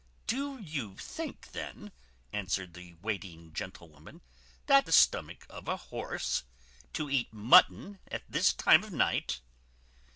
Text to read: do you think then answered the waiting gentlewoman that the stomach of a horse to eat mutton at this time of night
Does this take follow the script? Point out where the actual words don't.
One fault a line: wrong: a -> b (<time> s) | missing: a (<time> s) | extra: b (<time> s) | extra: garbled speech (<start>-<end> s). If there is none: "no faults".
no faults